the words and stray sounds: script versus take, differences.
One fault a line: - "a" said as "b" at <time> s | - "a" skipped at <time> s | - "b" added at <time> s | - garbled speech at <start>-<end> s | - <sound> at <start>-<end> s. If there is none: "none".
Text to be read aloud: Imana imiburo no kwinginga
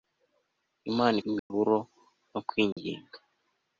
- dropout at 1.4-1.5 s
- dropout at 2.7-2.8 s